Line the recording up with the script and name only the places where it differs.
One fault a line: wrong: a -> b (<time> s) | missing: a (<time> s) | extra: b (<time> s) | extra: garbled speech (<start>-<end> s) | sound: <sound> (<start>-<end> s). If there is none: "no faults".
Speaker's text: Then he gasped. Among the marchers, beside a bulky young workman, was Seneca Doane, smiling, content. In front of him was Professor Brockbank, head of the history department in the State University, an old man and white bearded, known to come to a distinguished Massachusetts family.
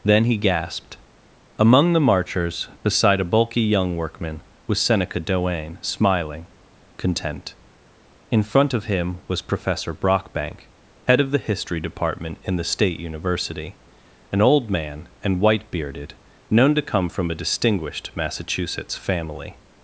wrong: to -> from (17.1 s)